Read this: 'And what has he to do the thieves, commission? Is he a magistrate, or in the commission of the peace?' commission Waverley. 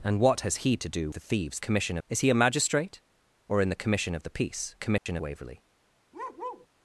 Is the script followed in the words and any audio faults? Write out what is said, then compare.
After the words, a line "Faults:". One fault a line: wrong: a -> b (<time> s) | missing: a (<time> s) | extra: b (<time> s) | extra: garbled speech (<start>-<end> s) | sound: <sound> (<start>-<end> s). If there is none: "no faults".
'And what has he to do the thieves, commission? Is he a magistrate, or in the commission of the peace?' commission Waverley.
Faults:
sound: dropout (5.0-5.1 s)
sound: bark (6.1-6.7 s)